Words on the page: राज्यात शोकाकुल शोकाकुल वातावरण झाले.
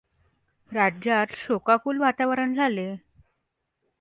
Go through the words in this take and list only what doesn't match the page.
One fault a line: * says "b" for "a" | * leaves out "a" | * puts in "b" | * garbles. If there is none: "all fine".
* leaves out "शोकाकुल"